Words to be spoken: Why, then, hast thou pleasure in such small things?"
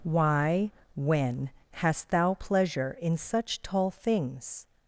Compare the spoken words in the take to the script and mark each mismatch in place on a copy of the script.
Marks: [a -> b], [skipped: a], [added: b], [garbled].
Why, [then, -> when] hast thou pleasure in such [small -> tall] things?"